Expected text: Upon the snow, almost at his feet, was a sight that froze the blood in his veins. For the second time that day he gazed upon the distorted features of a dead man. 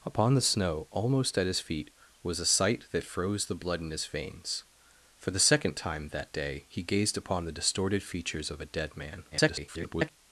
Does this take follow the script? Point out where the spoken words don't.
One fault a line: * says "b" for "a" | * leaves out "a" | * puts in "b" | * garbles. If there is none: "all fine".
* garbles